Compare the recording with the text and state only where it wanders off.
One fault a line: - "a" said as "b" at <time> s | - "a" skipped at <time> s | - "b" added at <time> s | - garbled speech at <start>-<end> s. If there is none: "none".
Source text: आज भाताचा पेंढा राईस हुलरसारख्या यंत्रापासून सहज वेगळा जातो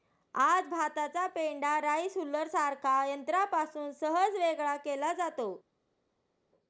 - "केला" added at 4.8 s